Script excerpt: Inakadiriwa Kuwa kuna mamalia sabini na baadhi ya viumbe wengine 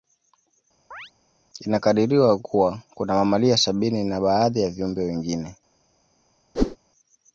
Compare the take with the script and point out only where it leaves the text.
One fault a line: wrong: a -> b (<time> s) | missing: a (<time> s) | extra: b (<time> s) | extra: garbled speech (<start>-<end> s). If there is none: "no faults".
no faults